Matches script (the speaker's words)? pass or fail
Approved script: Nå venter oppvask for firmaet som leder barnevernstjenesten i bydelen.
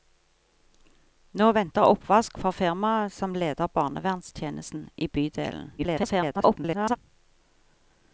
fail